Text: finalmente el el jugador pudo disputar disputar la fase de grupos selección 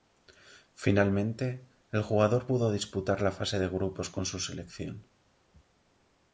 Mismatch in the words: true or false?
true